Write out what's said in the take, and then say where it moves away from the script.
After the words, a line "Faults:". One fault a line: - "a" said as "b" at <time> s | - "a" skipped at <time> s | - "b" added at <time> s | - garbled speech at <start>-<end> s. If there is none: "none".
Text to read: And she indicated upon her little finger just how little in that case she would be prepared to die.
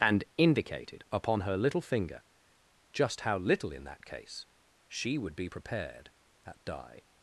And indicated upon her little finger just how little in that case she would be prepared at die.
Faults:
- "she" skipped at 0.2 s
- "to" said as "at" at 6.5 s